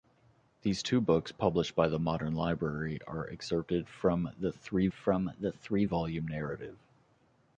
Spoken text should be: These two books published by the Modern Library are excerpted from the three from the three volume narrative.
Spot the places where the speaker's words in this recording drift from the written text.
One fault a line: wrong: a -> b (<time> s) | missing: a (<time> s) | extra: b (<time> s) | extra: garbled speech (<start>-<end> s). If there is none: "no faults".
no faults